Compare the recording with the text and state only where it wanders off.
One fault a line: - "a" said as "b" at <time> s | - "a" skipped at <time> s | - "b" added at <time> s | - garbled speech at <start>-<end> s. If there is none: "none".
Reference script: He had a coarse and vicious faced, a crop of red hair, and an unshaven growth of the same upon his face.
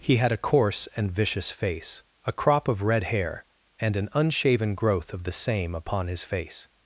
- "faced" said as "face" at 1.5 s